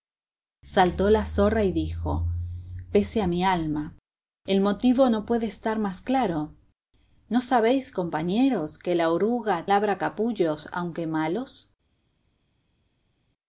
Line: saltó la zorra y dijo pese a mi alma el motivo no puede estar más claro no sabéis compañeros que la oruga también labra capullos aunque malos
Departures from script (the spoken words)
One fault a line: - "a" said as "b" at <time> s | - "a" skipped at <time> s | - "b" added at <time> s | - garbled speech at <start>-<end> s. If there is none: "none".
- "también" skipped at 9.7 s